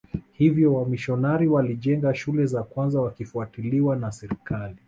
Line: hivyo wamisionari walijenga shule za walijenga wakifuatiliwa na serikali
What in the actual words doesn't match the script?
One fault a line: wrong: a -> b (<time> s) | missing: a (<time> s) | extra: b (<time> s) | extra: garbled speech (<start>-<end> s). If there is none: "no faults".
wrong: walijenga -> kwanza (2.6 s)